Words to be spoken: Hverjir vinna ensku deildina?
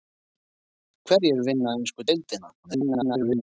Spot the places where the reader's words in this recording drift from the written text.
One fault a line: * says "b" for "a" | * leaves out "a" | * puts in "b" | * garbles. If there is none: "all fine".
* garbles